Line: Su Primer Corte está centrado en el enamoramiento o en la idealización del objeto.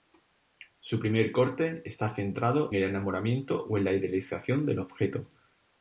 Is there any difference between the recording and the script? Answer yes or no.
yes